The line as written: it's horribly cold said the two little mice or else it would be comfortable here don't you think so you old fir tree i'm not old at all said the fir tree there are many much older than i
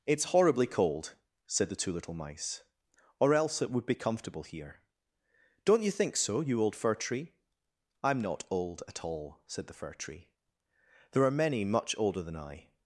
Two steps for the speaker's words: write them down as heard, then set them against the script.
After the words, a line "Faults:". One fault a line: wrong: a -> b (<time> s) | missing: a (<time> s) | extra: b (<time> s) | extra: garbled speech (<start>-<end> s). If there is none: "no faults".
it's horribly cold said the two little mice or else it would be comfortable here don't you think so you old fir tree i'm not old at all said the fir tree there are many much older than i
Faults:
no faults